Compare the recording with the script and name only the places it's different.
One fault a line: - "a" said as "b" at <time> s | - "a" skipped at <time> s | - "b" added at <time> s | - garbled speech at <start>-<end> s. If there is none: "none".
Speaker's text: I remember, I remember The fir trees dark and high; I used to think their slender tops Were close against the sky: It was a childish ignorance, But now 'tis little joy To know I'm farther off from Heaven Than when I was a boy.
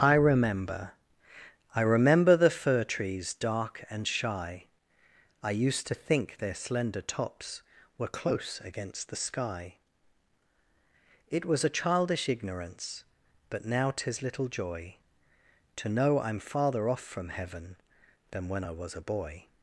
- "high" said as "shy" at 4.1 s